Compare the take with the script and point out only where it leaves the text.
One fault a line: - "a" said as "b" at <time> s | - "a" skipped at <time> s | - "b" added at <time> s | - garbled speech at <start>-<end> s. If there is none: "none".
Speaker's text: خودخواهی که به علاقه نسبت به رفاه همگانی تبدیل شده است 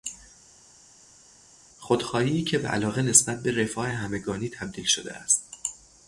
none